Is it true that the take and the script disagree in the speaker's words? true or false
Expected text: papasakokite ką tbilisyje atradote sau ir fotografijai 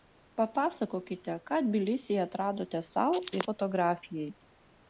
false